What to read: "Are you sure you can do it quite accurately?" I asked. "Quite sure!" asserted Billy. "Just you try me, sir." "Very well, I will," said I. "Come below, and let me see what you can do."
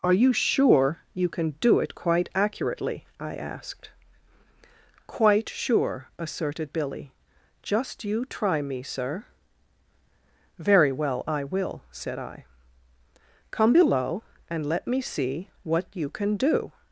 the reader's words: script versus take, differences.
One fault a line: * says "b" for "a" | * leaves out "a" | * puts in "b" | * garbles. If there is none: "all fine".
all fine